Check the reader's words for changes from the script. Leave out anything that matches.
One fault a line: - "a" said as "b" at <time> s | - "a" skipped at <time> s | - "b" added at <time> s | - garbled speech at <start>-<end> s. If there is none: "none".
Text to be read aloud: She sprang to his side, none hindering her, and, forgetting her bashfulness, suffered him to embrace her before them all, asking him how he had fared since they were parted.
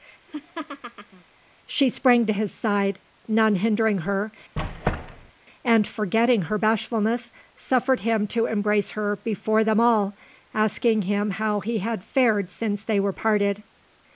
none